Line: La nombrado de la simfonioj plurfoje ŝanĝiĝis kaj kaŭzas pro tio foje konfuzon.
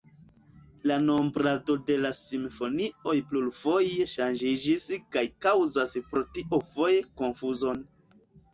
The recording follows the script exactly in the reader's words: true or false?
true